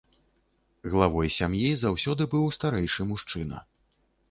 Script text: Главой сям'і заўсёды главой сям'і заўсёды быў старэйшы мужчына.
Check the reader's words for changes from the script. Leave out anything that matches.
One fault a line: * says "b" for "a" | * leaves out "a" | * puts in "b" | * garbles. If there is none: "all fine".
* leaves out "главой сям'і заўсёды"